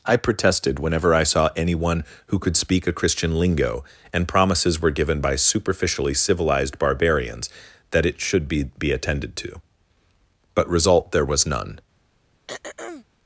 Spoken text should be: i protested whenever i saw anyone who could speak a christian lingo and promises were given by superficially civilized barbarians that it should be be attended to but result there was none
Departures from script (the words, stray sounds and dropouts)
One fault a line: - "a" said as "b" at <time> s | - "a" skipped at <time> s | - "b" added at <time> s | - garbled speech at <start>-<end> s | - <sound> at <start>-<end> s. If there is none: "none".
- throat clearing at 12.5-13.0 s